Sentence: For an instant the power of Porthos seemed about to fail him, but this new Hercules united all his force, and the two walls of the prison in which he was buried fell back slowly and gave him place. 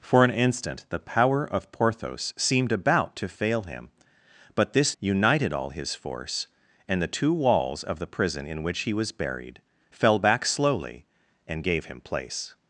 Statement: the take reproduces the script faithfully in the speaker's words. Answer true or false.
false